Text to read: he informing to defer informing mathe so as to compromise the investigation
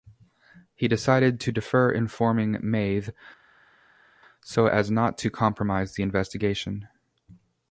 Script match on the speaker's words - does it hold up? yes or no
no